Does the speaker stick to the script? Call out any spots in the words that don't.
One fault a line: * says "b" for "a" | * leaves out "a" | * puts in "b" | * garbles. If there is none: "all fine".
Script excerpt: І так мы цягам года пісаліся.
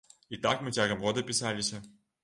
all fine